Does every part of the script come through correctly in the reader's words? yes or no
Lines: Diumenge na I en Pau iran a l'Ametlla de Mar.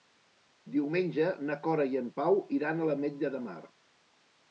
no